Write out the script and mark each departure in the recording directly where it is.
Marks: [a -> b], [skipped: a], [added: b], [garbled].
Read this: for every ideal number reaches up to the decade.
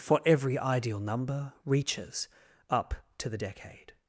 for every ideal number reaches up to the decade.